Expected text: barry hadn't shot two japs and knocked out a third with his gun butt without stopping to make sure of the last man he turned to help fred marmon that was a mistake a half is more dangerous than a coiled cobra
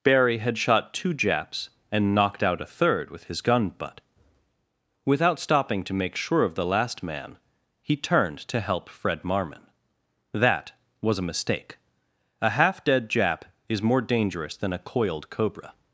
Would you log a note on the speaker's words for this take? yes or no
yes